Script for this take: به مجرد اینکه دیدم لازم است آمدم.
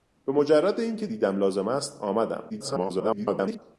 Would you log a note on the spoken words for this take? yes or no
yes